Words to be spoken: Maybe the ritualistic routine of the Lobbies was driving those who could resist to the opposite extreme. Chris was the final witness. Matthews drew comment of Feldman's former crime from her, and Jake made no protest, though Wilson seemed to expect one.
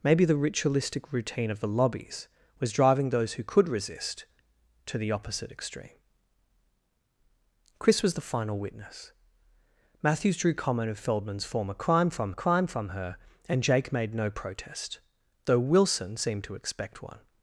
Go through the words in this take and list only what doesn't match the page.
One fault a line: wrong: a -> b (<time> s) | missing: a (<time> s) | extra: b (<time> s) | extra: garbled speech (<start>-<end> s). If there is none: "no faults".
extra: crime from (12.3 s)